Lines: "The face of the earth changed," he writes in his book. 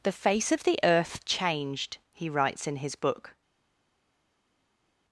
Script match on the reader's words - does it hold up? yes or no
yes